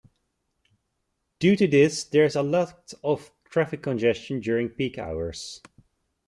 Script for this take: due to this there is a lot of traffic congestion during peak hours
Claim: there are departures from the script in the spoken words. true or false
false